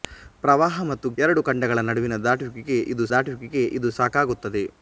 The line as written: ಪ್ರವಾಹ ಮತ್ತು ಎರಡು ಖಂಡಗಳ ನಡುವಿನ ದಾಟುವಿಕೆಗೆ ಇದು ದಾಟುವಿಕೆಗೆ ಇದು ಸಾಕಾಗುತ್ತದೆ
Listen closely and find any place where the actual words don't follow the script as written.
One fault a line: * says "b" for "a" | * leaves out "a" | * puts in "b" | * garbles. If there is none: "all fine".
all fine